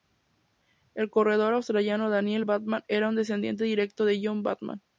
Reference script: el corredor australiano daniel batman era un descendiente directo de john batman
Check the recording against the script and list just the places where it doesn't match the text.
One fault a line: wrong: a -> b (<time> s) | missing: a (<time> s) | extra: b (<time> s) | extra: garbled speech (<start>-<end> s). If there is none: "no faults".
no faults